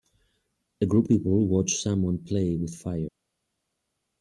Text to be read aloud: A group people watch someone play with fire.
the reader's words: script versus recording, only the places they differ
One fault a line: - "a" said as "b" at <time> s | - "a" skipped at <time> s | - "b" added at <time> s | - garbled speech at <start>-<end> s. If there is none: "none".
none